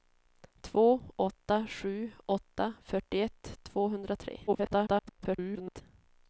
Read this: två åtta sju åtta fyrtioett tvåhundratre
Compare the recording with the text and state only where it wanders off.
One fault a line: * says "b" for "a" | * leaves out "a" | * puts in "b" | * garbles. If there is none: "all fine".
* garbles